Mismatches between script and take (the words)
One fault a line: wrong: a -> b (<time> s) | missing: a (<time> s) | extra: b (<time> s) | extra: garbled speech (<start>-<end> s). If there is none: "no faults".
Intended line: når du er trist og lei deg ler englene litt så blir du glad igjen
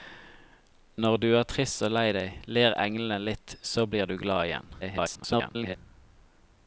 extra: garbled speech (4.8-5.8 s)